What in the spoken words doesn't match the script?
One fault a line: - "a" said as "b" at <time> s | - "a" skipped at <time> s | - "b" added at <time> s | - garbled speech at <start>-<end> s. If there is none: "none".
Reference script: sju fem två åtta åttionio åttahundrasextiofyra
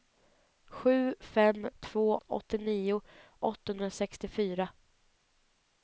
- "åtta" skipped at 2.2 s